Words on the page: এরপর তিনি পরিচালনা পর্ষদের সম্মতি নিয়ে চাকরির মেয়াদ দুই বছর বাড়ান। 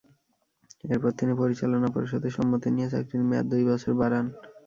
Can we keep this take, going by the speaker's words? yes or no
yes